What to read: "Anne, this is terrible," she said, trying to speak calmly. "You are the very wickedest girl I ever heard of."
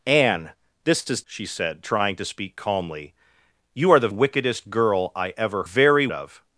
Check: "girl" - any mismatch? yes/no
no